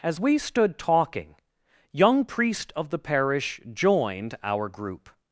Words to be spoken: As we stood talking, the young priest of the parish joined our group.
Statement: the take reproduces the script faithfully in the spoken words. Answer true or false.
false